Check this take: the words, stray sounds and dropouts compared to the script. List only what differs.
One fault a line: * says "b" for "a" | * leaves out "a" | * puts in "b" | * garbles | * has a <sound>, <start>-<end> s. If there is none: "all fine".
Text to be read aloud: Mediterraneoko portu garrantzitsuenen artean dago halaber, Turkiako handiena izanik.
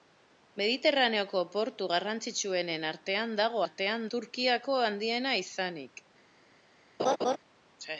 * says "artean" for "halaber"
* has a laugh, 7.0-7.4 s